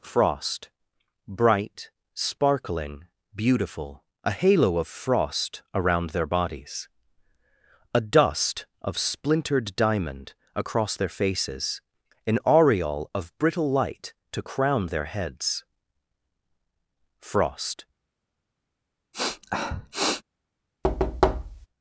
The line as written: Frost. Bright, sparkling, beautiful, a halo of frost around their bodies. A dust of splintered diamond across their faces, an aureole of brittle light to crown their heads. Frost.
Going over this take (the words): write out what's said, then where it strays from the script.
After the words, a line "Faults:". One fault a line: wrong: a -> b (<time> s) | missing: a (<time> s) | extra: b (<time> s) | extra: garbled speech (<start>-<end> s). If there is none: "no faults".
Frost. Bright, sparkling, beautiful, a halo of frost around their bodies. A dust of splintered diamond across their faces, an aureole of brittle light to crown their heads. Frost.
Faults:
no faults